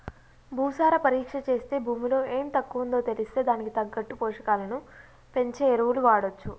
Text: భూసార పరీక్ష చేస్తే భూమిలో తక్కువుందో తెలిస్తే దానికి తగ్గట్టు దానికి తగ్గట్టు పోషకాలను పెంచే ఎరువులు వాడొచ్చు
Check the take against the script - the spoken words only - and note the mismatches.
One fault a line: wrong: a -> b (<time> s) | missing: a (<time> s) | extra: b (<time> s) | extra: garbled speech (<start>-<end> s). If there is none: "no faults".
extra: ఎం (2.4 s)
missing: దానికి తగ్గట్టు (4.2 s)